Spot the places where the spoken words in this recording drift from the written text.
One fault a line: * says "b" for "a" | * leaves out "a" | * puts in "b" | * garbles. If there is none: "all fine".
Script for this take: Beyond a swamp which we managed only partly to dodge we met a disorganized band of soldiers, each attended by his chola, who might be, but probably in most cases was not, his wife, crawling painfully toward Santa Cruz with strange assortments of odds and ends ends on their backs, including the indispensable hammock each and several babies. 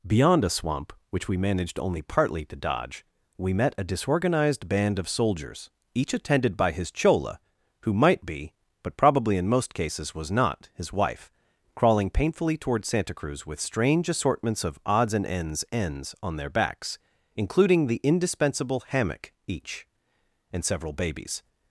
all fine